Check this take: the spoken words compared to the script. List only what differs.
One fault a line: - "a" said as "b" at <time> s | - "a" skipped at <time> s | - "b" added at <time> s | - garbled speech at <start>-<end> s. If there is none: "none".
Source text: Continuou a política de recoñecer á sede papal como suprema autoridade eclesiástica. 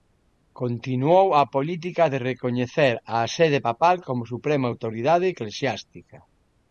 none